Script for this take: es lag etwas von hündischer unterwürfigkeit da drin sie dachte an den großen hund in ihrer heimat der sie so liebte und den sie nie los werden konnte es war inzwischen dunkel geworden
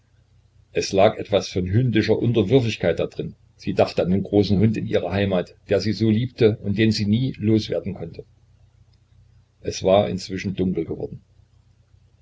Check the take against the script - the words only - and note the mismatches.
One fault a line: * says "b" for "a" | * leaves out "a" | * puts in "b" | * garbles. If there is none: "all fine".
all fine